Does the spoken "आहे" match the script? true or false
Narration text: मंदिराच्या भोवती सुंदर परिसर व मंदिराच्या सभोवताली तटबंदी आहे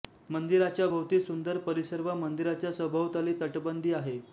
true